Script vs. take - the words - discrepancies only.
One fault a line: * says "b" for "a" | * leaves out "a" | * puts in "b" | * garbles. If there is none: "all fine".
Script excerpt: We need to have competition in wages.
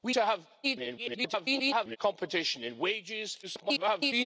* leaves out "need"
* garbles
* garbles